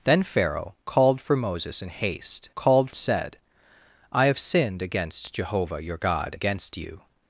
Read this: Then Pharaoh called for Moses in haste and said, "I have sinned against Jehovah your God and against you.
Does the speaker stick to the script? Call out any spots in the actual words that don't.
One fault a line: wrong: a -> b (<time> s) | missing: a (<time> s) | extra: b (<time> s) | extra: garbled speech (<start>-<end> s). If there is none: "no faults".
wrong: and -> called (2.5 s)
missing: and (6.4 s)